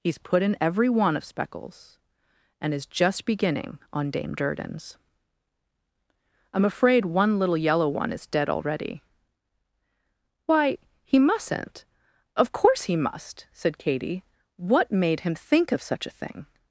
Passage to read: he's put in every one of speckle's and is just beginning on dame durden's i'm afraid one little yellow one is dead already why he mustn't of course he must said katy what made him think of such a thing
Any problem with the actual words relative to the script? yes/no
no